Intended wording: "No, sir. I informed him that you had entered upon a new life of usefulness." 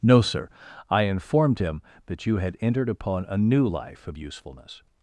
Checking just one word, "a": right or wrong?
right